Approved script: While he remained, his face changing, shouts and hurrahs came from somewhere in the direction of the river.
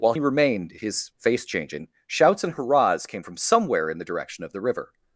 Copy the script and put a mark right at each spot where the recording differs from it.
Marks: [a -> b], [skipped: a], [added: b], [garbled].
While [skipped: he] remained, his face changing, shouts and hurrahs came from somewhere in the direction of the river.